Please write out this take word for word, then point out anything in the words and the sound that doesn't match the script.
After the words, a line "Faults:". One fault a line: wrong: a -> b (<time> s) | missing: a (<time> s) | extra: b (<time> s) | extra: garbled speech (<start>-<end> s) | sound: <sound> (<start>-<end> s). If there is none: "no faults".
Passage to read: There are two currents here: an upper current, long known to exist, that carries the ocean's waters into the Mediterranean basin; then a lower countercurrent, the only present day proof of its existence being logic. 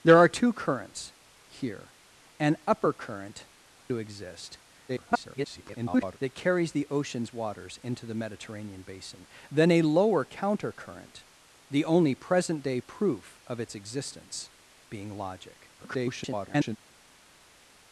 There are two currents here: an upper current, to exist, [garbled] that carries the ocean's waters into the Mediterranean basin; then a lower countercurrent, the only present day proof of its existence being logic. [garbled]
Faults:
missing: long known (3.5 s)
extra: garbled speech (4.9-6.2 s)
extra: garbled speech (15.8-16.8 s)